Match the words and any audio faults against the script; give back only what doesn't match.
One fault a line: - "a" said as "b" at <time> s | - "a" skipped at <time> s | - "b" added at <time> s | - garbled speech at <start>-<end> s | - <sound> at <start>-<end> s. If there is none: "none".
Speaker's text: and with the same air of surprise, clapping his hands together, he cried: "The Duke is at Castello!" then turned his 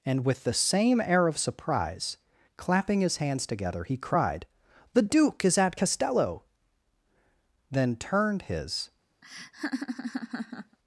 - laugh at 9.2-10.8 s